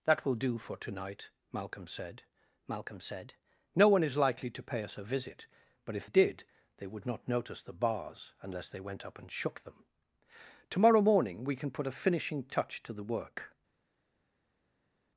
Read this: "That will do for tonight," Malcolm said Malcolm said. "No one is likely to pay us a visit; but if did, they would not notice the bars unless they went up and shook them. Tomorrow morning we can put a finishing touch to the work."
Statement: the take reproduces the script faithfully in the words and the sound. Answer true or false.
true